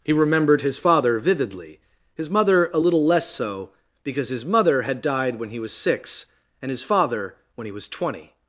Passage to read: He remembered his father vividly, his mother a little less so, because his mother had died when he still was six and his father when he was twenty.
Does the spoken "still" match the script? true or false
false